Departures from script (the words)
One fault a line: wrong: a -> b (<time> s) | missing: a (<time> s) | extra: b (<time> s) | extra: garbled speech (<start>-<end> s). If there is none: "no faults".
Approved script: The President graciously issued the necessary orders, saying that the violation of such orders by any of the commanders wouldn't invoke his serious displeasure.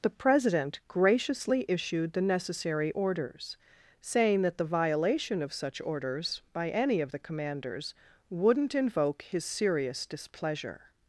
no faults